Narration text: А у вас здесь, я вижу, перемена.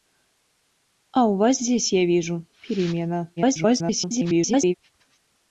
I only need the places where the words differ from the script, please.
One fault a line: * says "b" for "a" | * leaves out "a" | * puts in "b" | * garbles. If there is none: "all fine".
* garbles